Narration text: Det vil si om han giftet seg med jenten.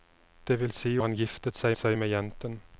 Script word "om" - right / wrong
wrong